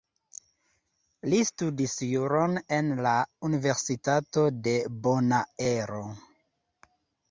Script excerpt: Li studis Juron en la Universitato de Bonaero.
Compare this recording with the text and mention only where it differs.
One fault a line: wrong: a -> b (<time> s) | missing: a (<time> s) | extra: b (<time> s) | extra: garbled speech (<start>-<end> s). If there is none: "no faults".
no faults